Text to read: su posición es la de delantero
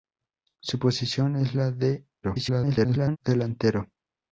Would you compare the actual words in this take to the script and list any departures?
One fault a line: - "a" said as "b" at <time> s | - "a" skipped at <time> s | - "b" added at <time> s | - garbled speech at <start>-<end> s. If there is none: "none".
- garbled speech at 2.2-3.2 s